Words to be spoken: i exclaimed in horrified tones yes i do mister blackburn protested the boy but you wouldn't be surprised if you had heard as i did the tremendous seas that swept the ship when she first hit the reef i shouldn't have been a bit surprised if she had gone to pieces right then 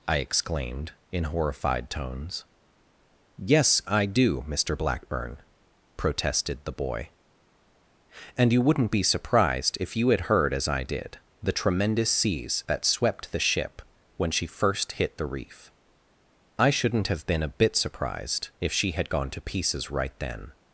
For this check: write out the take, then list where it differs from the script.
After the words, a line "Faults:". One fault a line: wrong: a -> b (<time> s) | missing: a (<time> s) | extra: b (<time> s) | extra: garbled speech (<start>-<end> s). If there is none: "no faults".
i exclaimed in horrified tones yes i do mister blackburn protested the boy and you wouldn't be surprised if you had heard as i did the tremendous seas that swept the ship when she first hit the reef i shouldn't have been a bit surprised if she had gone to pieces right then
Faults:
wrong: but -> and (8.4 s)